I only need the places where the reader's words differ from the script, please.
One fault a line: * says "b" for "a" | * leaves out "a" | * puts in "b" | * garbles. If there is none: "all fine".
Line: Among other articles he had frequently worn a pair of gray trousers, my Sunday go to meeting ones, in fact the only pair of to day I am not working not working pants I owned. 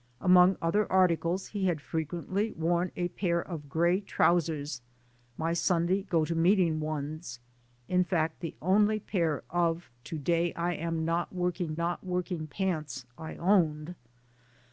all fine